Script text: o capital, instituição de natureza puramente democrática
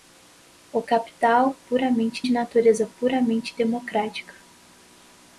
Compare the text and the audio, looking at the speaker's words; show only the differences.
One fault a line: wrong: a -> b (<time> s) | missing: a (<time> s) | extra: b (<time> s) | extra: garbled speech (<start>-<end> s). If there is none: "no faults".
wrong: instituição -> puramente (1.7 s)